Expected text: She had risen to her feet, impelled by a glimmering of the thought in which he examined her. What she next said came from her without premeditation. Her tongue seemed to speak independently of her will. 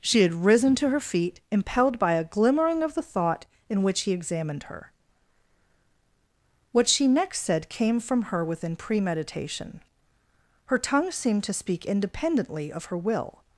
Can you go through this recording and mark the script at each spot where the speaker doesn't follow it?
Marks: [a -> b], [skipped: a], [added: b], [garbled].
She had risen to her feet, impelled by a glimmering of the thought in which he examined her. What she next said came from her [without -> within] premeditation. Her tongue seemed to speak independently of her will.